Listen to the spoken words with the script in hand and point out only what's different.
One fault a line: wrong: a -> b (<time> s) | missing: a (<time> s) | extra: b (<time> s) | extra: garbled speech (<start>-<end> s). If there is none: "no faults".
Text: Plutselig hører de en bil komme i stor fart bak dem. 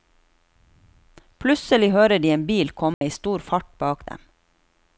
no faults